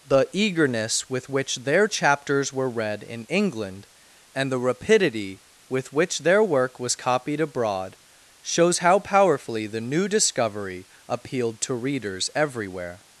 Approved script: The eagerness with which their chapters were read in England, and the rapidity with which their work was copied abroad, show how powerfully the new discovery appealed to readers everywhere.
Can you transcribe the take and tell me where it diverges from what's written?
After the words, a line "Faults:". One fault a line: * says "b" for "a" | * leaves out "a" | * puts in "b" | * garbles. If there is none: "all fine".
The eagerness with which their chapters were read in England, and the rapidity with which their work was copied abroad, shows how powerfully the new discovery appealed to readers everywhere.
Faults:
* says "shows" for "show"